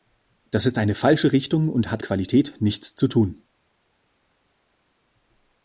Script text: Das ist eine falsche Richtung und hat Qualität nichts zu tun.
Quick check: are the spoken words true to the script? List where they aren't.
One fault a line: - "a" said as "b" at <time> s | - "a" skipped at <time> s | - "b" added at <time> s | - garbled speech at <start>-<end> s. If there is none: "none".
none